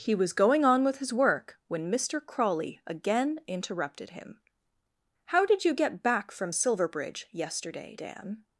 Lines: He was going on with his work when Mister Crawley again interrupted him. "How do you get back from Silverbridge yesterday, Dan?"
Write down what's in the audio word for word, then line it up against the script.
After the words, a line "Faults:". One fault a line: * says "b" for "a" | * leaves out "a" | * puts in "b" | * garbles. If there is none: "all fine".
He was going on with his work when Mister Crawley again interrupted him. "How did you get back from Silverbridge yesterday, Dan?"
Faults:
* says "did" for "do"